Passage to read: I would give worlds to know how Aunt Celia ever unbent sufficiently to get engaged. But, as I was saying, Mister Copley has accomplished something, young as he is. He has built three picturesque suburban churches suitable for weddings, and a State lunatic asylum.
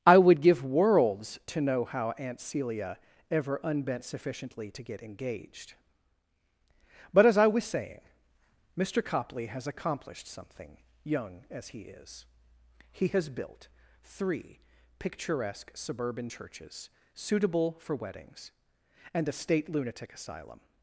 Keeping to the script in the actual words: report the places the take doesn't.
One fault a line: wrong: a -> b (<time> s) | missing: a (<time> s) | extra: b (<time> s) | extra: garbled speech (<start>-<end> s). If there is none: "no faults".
no faults